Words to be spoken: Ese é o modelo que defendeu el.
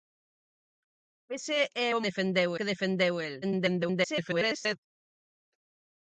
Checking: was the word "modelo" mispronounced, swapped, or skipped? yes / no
yes